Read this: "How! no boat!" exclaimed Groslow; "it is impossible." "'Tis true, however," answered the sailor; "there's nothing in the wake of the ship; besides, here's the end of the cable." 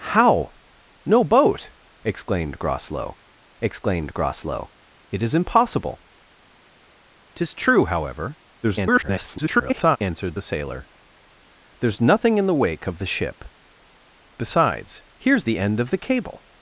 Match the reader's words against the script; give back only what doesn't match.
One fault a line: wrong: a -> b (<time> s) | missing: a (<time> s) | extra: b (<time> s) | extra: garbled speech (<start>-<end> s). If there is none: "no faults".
extra: exclaimed Groslow (3.6 s)
extra: garbled speech (8.6-10.0 s)